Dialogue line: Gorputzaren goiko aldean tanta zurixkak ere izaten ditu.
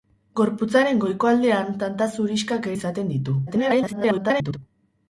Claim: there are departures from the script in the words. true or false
true